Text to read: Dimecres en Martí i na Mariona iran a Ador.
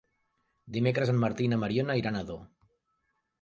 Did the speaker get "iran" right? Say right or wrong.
right